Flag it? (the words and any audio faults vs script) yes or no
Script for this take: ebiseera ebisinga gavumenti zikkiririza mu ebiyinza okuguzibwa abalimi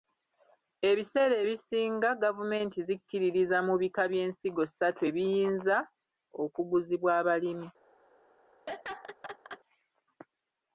yes